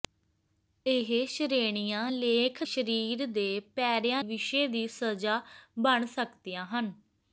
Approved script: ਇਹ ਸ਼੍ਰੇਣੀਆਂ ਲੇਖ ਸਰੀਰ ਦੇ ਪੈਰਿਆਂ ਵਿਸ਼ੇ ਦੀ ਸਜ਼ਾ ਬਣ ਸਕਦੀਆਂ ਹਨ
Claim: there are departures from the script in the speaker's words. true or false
false